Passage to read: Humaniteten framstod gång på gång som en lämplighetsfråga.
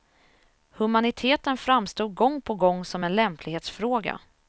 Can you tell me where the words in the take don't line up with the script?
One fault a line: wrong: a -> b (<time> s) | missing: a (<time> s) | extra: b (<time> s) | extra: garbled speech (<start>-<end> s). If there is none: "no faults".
no faults